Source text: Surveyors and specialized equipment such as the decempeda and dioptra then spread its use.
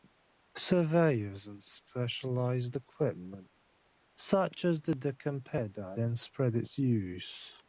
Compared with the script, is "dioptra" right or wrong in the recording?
wrong